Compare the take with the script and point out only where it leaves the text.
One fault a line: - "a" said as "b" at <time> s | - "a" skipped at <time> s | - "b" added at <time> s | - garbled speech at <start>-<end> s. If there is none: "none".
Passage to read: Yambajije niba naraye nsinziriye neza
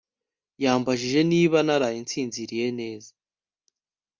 none